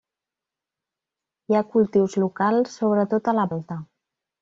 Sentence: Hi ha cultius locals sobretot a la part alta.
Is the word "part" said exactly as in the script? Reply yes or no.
no